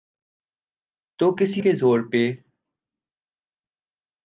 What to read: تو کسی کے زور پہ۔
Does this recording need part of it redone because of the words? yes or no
no